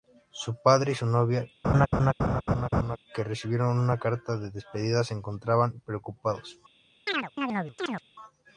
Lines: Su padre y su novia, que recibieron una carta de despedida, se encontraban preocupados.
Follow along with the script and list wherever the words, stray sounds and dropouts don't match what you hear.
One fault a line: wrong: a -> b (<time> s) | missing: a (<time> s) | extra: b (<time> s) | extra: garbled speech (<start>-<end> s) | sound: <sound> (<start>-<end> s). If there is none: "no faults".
sound: laugh (1.6-3.0 s)
sound: chirp (7.1-8.0 s)